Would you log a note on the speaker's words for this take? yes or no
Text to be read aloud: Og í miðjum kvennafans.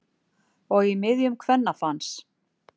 no